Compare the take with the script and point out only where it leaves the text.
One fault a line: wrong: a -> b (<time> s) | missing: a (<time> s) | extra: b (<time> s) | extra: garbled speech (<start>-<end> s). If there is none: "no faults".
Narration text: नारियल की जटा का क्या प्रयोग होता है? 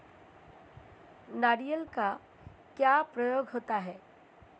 missing: की जटा (1.9 s)